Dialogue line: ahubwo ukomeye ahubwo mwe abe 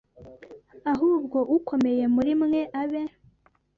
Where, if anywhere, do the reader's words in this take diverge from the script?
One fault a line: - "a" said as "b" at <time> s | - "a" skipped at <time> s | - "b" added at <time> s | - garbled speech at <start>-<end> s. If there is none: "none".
- "ahubwo" said as "muri" at 2.1 s